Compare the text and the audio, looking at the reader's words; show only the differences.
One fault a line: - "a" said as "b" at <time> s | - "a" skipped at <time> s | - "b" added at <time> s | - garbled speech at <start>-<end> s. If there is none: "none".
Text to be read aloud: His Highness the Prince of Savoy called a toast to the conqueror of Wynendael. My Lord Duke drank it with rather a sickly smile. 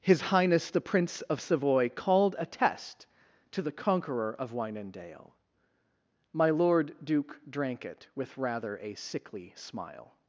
- "toast" said as "test" at 2.5 s